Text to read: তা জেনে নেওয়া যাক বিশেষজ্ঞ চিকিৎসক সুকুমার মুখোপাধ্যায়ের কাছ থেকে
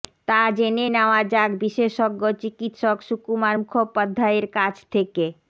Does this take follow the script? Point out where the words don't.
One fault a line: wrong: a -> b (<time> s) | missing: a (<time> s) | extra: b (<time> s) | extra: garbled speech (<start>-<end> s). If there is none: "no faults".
no faults